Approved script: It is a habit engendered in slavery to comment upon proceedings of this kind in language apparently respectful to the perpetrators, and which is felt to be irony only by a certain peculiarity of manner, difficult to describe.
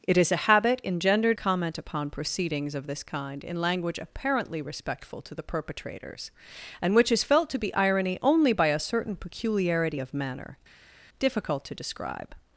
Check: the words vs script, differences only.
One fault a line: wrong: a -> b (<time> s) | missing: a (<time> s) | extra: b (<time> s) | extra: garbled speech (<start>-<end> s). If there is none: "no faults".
missing: in slavery to (1.4 s)